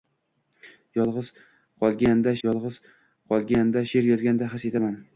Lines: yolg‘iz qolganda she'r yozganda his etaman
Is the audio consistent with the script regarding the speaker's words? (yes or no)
no